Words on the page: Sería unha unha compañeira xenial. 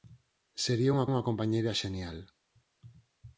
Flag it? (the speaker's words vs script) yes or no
no